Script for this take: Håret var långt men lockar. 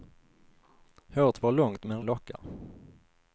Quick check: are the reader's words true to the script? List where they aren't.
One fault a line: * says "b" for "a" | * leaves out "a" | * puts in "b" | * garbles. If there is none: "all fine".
all fine